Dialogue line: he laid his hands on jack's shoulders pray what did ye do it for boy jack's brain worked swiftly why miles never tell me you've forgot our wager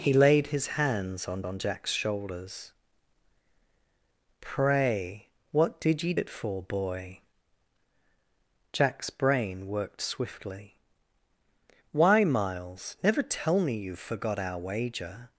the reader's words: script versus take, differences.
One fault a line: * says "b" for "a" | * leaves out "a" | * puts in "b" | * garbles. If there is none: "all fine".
* puts in "on"
* leaves out "do"